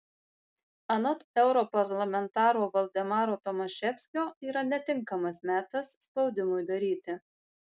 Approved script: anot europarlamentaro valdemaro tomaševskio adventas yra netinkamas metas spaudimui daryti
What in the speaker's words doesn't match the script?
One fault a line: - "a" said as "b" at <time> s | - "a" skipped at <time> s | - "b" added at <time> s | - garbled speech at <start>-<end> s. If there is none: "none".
- "adventas" skipped at 4.2 s